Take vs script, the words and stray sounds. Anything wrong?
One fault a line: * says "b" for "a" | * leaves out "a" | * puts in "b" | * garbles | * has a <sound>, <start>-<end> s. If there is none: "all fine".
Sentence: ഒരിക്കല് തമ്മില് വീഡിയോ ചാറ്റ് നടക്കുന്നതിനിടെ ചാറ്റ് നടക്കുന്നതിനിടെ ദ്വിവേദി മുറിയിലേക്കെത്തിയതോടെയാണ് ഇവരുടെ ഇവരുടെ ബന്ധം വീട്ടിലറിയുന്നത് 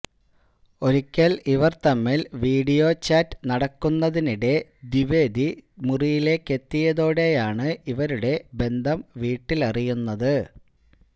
* puts in "ഇവര്"
* leaves out "ചാറ്റ് നടക്കുന്നതിനിടെ"
* leaves out "ഇവരുടെ"